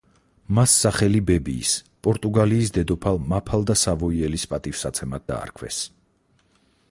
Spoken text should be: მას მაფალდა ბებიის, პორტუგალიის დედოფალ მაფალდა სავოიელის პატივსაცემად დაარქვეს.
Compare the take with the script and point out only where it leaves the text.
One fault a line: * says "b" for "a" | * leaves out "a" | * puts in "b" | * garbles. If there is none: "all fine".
* says "სახელი" for "მაფალდა"